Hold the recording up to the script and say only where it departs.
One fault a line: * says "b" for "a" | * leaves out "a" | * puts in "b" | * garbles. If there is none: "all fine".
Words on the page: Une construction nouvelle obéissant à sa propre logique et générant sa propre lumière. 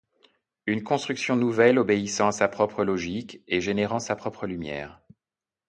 all fine